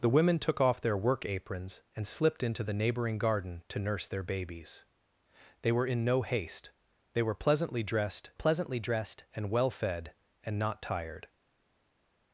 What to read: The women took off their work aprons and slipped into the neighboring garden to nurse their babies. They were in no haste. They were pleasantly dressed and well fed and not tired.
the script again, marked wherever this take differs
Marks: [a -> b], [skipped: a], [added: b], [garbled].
The women took off their work aprons and slipped into the neighboring garden to nurse their babies. They were in no haste. They were pleasantly dressed [added: pleasantly dressed] and well fed and not tired.